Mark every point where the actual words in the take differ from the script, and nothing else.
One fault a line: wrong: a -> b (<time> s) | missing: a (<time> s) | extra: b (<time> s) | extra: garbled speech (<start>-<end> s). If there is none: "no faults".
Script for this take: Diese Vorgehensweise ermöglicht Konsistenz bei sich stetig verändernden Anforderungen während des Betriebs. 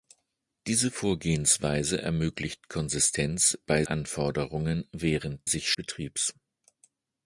missing: sich stetig verändernden (3.8 s)
wrong: des -> sich (5.4 s)